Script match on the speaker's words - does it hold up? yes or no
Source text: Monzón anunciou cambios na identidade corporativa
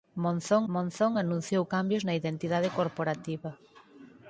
no